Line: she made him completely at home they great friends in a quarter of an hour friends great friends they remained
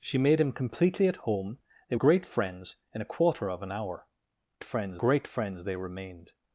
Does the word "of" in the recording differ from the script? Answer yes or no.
no